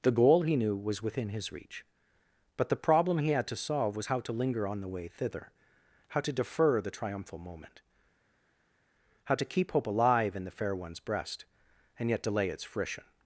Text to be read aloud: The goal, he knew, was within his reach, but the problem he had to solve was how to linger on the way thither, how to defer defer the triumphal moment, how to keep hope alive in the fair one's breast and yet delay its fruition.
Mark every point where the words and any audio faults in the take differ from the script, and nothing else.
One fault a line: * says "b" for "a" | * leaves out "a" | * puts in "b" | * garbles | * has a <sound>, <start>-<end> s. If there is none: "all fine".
* leaves out "defer"